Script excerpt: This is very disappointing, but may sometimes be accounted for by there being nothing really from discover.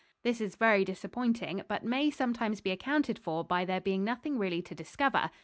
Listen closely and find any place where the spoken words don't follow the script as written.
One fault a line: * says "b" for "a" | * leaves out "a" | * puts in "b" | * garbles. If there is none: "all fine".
* says "to" for "from"